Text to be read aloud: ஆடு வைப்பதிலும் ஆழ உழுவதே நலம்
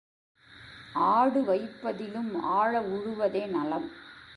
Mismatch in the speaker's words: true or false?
false